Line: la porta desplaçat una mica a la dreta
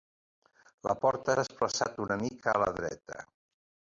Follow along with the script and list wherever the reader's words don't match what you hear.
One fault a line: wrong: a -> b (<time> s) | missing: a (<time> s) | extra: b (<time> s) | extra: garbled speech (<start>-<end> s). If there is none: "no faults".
no faults